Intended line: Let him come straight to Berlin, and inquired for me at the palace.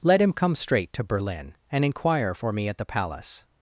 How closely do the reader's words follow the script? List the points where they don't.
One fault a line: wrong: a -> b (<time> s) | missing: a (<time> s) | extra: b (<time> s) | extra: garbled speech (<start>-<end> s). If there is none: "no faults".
wrong: inquired -> inquire (1.9 s)